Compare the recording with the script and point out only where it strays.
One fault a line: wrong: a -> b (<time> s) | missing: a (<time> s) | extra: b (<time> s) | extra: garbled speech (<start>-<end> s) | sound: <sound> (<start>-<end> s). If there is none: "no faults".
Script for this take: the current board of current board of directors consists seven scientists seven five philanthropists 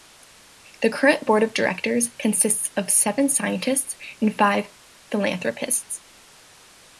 wrong: current board -> directors consists (1.5 s)
missing: directors consists (2.9 s)
wrong: seven -> and (4.2 s)